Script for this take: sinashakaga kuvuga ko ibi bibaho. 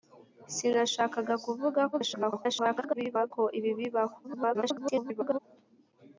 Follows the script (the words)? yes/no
no